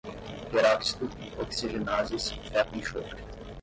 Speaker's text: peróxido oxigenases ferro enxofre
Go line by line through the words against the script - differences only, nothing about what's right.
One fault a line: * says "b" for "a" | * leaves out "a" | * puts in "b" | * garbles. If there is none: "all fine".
all fine